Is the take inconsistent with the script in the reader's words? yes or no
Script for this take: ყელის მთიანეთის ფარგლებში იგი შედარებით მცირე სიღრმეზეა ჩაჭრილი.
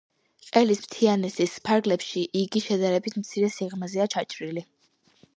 no